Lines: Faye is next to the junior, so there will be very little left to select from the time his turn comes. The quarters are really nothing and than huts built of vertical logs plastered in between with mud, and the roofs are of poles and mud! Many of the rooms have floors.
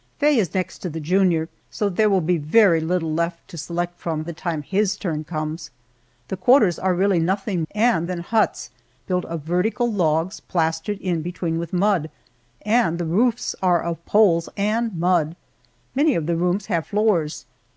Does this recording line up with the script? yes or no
yes